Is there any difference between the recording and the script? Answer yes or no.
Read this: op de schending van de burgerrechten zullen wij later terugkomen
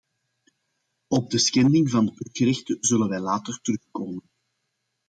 no